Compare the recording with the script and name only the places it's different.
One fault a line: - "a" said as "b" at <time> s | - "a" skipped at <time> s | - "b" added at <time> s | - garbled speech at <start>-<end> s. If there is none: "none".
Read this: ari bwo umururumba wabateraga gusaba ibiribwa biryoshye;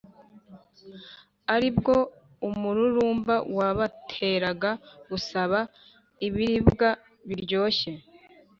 none